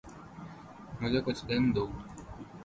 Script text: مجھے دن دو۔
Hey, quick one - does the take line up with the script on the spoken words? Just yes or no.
no